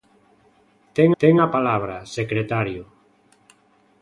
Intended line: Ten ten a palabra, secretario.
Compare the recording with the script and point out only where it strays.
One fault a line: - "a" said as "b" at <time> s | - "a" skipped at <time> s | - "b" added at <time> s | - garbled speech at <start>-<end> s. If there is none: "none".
none